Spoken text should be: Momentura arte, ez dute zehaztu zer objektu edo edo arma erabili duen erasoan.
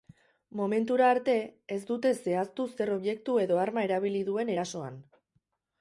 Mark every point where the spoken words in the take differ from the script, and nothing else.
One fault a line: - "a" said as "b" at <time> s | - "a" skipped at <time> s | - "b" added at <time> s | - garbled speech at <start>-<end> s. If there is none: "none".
- "edo" skipped at 3.6 s